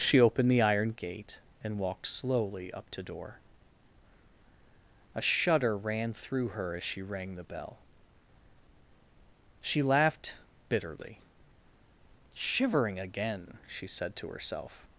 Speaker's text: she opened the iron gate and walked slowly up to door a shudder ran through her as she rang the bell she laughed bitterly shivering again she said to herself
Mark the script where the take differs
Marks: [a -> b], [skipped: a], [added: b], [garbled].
she opened the iron gate and walked slowly up to door a shudder ran through her as she rang the bell she laughed bitterly shivering again she said to herself